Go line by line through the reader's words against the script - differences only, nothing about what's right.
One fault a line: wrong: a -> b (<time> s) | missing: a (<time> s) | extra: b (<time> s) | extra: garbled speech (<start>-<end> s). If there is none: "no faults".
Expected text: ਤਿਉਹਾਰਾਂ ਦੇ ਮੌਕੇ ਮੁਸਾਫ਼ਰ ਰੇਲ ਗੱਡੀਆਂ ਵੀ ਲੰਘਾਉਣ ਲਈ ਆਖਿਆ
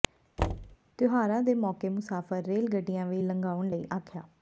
no faults